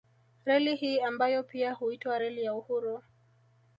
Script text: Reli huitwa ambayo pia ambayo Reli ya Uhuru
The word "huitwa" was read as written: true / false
false